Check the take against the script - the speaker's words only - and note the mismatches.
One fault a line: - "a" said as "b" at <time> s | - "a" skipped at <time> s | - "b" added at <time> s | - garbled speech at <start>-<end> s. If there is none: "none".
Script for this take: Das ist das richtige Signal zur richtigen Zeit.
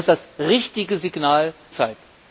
- "ist" skipped at 0.1 s
- "zur richtigen" skipped at 1.5 s